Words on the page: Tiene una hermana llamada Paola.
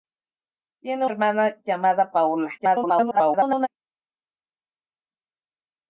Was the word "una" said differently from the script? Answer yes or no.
yes